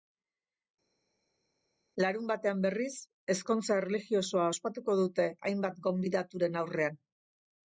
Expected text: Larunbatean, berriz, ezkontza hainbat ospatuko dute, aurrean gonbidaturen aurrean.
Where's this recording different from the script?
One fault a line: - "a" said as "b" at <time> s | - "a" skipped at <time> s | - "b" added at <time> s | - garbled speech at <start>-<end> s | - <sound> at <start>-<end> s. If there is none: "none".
- "hainbat" said as "erlijiosoa" at 3.8 s
- "aurrean" said as "hainbat" at 5.5 s